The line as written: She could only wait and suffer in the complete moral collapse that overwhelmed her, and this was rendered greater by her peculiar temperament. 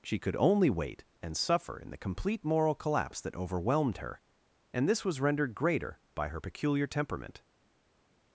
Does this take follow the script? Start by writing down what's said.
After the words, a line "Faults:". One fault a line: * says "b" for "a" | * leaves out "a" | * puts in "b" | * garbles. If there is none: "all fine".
She could only wait and suffer in the complete moral collapse that overwhelmed her, and this was rendered greater by her peculiar temperament.
Faults:
all fine